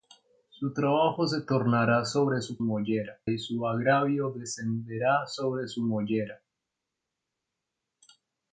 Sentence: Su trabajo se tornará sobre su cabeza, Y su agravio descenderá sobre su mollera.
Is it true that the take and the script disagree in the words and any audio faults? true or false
true